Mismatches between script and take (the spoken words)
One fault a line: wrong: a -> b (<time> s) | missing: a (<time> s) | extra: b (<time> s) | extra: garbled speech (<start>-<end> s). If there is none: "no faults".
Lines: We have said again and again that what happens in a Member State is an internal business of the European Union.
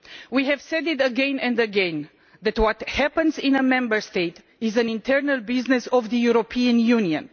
no faults